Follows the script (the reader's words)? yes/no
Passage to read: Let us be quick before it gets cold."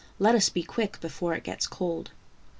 yes